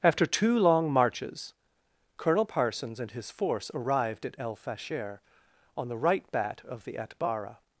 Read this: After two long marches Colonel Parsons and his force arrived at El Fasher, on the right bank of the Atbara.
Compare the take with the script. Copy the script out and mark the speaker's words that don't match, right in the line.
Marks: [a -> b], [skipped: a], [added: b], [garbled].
After two long marches Colonel Parsons and his force arrived at El Fasher, on the right [bank -> bat] of the Atbara.